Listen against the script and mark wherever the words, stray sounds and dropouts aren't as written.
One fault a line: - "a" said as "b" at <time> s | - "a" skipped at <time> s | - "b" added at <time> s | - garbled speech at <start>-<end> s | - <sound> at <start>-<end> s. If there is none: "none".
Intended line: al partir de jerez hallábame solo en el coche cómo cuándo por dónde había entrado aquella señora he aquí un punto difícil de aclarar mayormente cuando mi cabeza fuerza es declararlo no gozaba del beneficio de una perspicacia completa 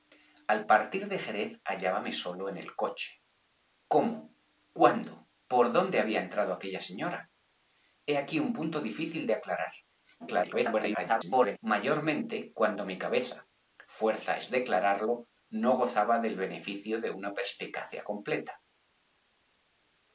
- garbled speech at 10.2-11.6 s